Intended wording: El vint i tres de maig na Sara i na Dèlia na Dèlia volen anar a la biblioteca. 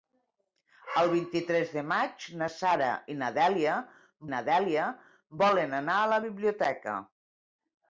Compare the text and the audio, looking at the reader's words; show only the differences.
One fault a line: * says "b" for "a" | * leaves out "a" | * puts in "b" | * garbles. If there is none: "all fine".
all fine